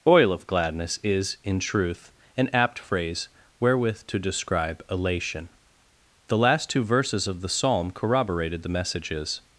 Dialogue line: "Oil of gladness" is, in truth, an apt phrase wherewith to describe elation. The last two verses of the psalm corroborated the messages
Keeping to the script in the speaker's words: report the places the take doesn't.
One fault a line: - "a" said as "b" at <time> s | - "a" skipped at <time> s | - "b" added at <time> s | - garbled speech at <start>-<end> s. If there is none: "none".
none